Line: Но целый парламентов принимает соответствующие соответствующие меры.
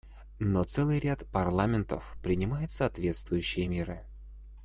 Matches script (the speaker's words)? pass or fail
fail